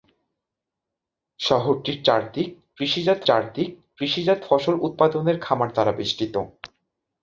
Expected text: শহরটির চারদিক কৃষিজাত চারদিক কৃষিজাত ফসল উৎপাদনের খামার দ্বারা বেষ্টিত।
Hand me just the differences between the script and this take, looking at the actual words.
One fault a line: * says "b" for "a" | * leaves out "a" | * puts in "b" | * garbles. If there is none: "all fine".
all fine